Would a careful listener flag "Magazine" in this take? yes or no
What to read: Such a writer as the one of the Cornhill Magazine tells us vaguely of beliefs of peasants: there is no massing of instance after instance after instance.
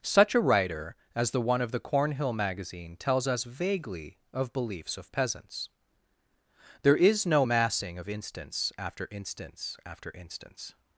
no